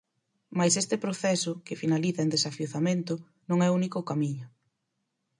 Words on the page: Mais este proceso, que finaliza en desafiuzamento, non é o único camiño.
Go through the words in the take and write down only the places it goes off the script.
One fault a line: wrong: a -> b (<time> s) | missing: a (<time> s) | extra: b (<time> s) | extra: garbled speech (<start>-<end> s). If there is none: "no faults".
no faults